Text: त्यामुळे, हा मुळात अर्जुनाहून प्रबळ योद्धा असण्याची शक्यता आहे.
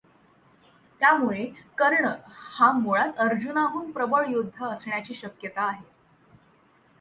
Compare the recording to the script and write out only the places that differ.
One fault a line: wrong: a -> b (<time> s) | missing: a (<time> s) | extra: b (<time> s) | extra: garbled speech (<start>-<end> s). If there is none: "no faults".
extra: कर्ण (1.8 s)